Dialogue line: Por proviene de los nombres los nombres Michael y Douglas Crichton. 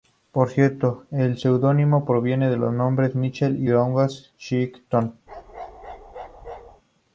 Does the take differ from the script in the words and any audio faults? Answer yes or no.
yes